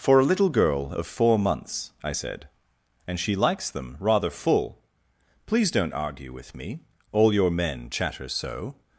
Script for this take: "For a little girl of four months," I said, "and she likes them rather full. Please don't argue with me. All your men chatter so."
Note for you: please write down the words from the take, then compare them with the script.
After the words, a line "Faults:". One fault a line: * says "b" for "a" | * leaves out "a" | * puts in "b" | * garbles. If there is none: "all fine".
"For a little girl of four months," I said, "and she likes them rather full. Please don't argue with me. All your men chatter so."
Faults:
all fine